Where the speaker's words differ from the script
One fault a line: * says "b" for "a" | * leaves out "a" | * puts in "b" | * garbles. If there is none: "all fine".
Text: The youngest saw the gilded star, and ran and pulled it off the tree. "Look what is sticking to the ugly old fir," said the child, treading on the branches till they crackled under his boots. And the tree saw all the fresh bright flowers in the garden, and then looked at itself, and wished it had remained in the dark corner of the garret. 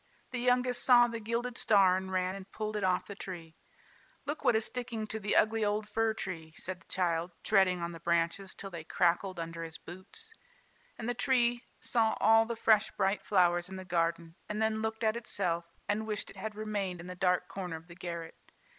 * puts in "tree"